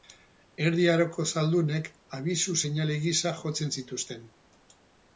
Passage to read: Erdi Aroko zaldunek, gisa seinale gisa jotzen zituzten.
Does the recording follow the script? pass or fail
fail